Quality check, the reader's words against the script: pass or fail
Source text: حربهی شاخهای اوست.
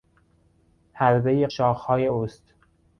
pass